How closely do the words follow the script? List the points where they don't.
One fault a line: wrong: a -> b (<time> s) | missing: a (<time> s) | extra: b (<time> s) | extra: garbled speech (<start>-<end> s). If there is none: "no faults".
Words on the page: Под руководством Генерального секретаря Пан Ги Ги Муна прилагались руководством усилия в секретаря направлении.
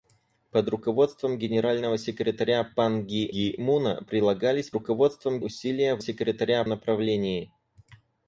no faults